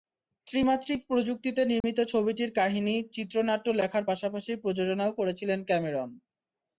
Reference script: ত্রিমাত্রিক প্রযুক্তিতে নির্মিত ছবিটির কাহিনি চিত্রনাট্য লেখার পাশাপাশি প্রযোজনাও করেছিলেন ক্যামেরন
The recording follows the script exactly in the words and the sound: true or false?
false